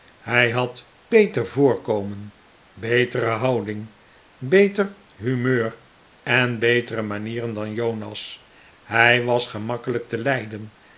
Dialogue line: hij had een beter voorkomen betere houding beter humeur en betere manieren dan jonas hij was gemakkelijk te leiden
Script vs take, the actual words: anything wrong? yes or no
yes